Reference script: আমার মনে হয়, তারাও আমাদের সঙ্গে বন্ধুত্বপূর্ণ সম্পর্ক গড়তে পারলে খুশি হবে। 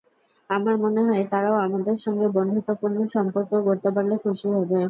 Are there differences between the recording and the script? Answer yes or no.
no